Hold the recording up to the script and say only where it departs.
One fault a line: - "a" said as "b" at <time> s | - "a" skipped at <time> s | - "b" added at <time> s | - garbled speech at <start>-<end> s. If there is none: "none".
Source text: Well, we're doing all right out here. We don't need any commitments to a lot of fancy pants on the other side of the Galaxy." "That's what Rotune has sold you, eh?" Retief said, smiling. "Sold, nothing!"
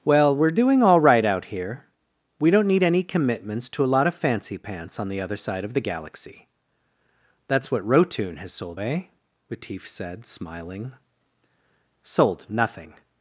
- "you" skipped at 8.8 s